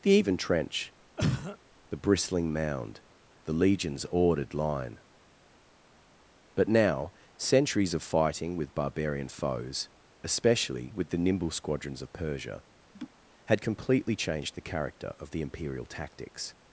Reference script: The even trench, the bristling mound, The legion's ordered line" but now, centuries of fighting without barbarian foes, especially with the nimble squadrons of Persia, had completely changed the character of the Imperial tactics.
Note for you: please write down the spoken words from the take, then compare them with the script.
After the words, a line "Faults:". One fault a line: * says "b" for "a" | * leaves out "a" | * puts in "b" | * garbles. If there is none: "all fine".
The even trench, the bristling mound, The legion's ordered line" but now, centuries of fighting with barbarian foes, especially with the nimble squadrons of Persia, had completely changed the character of the Imperial tactics.
Faults:
* says "with" for "without"